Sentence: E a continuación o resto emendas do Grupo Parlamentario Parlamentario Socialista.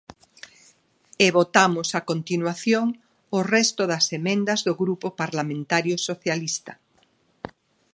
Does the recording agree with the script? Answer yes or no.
no